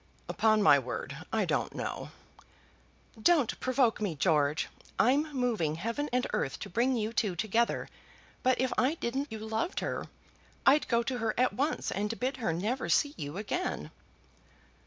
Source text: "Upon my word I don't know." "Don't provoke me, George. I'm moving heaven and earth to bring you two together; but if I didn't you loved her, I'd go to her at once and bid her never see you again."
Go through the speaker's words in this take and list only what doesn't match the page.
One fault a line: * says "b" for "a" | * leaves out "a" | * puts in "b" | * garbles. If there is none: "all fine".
all fine